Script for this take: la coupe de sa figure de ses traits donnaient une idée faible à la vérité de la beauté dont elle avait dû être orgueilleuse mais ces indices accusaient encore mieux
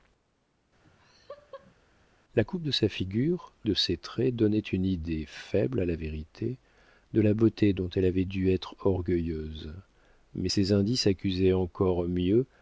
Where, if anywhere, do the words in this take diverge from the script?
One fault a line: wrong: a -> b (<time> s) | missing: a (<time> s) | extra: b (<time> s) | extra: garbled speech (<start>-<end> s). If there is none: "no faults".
no faults